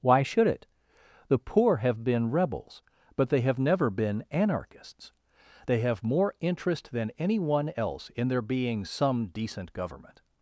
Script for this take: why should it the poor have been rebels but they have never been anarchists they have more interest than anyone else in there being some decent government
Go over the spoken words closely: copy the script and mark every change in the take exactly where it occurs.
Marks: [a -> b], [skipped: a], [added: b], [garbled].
why should it the poor have been rebels but they have never been anarchists they have more interest than anyone else in there being some decent government